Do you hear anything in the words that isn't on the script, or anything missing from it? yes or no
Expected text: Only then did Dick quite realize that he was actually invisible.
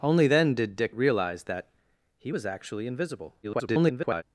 yes